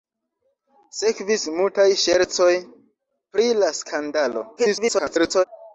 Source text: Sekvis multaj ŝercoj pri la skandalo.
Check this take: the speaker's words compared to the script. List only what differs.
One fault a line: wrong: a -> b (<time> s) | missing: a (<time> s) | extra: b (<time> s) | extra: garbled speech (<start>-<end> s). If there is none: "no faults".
extra: garbled speech (4.6-5.4 s)